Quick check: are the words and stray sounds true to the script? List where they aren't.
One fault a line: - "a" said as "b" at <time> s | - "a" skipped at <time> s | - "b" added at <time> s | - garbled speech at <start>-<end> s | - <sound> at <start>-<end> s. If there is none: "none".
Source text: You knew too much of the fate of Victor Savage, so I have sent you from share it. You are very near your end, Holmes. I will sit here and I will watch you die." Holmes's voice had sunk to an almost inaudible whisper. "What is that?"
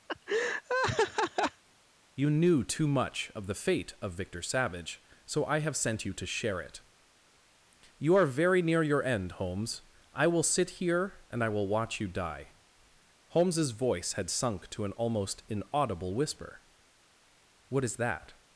- laugh at 0.1-1.6 s
- "from" said as "to" at 6.1 s